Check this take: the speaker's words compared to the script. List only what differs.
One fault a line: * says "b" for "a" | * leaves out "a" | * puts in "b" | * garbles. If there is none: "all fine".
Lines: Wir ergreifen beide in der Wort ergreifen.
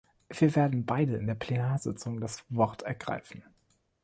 * says "werden" for "ergreifen"
* puts in "Plenarsitzung das"